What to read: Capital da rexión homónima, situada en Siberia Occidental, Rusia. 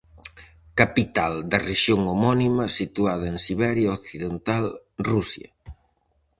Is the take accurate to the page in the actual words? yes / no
yes